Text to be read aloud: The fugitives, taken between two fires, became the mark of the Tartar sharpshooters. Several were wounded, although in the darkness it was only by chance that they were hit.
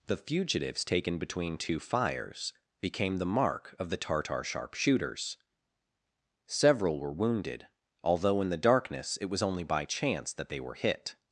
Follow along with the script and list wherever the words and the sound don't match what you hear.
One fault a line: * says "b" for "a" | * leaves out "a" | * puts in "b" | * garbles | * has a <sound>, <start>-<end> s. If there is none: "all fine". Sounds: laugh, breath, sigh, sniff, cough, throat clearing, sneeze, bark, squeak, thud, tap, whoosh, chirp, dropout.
all fine